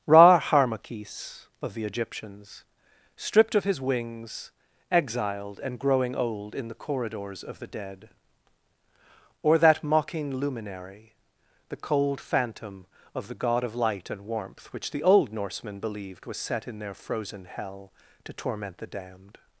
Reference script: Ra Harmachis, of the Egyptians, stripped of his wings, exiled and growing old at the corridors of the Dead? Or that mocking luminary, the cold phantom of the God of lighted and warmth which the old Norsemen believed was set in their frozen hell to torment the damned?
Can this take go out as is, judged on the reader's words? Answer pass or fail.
fail